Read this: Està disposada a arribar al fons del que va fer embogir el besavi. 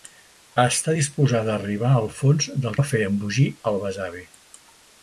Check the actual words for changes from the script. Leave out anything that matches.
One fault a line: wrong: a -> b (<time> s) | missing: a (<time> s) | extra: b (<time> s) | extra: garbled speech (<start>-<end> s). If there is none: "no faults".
missing: que (2.8 s)